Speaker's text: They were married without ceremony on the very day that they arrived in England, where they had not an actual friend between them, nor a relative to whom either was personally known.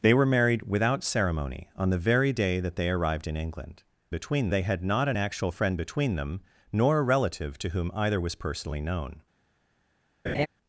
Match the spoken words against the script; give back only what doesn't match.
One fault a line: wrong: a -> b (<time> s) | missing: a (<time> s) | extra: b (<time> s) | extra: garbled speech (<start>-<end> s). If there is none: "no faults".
wrong: where -> between (4.1 s)